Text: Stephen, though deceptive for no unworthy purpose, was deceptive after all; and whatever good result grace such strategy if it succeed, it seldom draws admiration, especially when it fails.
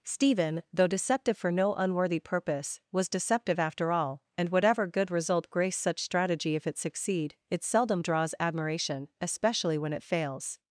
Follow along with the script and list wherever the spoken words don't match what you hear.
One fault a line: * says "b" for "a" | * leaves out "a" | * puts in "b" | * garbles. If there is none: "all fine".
all fine